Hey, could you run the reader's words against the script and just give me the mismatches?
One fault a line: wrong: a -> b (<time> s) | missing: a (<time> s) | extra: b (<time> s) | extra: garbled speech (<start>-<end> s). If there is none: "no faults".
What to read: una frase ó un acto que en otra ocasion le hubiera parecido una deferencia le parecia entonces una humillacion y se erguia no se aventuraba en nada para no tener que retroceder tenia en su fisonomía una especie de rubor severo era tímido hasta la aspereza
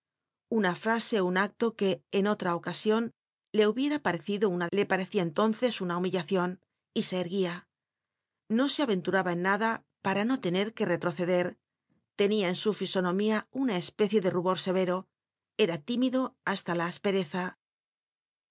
missing: deferencia (4.7 s)